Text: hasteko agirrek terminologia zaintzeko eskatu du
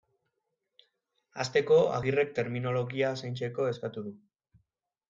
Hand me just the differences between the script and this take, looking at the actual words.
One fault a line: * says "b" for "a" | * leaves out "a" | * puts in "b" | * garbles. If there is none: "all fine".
all fine